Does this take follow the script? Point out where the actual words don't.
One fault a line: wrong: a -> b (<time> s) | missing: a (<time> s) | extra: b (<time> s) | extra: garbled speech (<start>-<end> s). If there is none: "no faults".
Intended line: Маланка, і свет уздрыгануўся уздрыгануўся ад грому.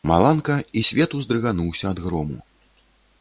missing: уздрыгануўся (1.8 s)